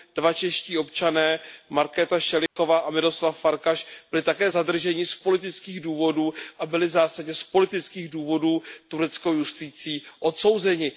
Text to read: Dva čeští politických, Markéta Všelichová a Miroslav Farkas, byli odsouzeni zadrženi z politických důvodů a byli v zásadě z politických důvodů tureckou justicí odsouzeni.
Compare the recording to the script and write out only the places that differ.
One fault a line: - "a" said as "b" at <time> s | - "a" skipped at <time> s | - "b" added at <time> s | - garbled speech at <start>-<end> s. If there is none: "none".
- "politických" said as "občané" at 0.8 s
- "odsouzeni" said as "také" at 4.2 s